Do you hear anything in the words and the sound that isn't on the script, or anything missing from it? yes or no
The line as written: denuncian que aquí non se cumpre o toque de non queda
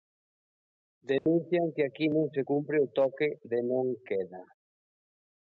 yes